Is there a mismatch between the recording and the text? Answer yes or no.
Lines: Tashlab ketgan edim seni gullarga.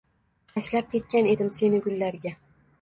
no